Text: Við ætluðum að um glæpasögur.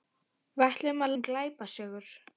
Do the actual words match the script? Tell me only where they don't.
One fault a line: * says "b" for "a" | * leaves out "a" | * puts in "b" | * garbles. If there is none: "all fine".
all fine